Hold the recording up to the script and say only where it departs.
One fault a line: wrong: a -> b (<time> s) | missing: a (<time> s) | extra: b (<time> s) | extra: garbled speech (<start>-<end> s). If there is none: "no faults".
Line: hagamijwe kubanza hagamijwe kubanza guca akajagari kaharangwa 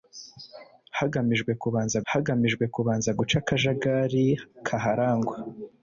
no faults